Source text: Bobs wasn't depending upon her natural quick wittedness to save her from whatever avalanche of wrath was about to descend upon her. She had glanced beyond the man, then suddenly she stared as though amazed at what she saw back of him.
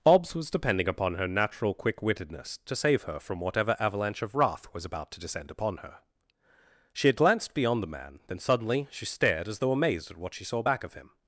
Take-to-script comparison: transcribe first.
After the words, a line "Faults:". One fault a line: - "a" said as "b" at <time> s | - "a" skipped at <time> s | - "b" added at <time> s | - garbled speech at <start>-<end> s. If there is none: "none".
Bobs was depending upon her natural quick wittedness to save her from whatever avalanche of wrath was about to descend upon her. She had glanced beyond the man, then suddenly she stared as though amazed at what she saw back of him.
Faults:
- "wasn't" said as "was" at 0.3 s